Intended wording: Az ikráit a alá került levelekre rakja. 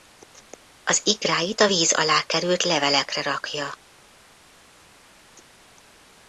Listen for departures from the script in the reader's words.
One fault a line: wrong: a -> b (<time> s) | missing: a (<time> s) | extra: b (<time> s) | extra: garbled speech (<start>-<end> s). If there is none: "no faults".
extra: víz (1.6 s)